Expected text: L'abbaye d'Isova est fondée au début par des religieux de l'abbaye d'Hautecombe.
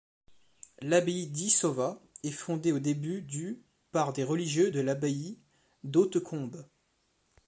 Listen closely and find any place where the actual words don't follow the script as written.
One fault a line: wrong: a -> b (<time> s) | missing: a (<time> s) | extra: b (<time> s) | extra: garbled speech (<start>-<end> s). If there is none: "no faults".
extra: du (3.2 s)